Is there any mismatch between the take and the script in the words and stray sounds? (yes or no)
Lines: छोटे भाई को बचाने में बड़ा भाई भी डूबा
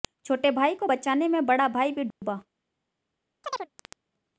yes